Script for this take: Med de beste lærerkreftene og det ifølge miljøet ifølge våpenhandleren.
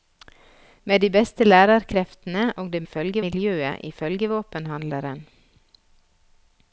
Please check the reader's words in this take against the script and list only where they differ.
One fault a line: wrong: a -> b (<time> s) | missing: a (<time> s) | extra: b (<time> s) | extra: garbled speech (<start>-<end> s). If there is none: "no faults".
no faults